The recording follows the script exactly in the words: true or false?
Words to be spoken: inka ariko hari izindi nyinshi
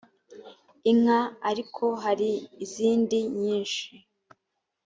true